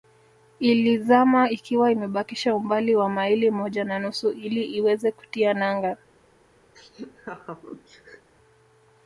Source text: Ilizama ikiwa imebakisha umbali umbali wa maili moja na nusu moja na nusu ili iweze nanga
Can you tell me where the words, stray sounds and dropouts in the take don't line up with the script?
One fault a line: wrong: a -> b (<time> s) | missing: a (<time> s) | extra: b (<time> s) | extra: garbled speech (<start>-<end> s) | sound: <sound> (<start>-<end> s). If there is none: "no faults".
missing: umbali (3.0 s)
missing: moja na nusu (4.3 s)
extra: kutia (5.1 s)
sound: laugh (6.7-8.3 s)